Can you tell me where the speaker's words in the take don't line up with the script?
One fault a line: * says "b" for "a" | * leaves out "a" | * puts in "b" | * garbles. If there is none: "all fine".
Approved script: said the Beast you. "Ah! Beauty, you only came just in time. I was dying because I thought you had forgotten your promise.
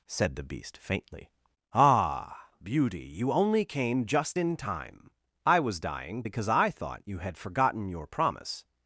* says "faintly" for "you"